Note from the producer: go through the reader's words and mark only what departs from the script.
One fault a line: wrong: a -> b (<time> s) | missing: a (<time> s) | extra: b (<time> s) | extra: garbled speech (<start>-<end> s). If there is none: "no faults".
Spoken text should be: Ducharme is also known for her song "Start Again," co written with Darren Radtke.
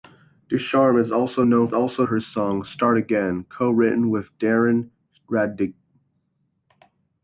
wrong: for -> also (1.7 s)